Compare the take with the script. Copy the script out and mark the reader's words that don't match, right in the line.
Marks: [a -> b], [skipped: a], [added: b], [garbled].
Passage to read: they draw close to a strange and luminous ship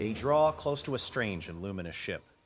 they draw close to a strange and luminous ship